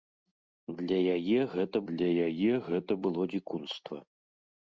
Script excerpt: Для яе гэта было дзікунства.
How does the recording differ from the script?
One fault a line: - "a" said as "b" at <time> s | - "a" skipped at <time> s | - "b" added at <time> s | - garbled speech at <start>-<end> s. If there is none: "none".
- "для яе гэта" added at 1.9 s